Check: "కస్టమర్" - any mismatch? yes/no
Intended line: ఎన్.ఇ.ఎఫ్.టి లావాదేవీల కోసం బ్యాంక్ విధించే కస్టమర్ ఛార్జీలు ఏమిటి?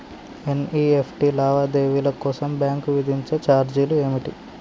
yes